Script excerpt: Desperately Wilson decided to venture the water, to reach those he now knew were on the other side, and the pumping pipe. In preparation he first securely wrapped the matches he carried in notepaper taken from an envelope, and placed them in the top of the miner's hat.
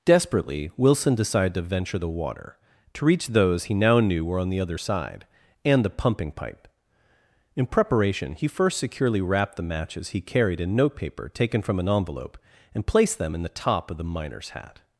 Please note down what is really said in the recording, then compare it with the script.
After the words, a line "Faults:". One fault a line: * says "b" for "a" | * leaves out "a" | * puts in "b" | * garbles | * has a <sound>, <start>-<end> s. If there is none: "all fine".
Desperately Wilson decided to venture the water, to reach those he now knew were on the other side, and the pumping pipe. In preparation he first securely wrapped the matches he carried in notepaper taken from an envelope, and placed them in the top of the miner's hat.
Faults:
all fine